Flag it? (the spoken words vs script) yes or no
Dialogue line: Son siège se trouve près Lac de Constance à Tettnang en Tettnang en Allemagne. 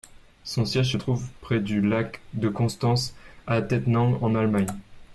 yes